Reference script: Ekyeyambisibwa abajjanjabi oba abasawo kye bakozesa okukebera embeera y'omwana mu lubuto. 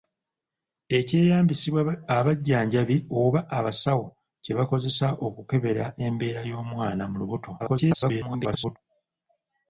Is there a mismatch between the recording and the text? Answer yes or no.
yes